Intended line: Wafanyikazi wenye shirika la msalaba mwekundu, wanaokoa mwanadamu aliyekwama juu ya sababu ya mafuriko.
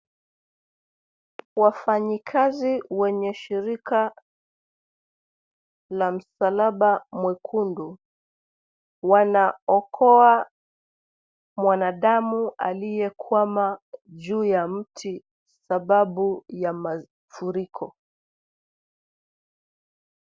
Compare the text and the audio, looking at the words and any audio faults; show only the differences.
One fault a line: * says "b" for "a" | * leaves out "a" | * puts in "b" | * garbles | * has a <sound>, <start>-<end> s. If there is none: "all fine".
* puts in "mti"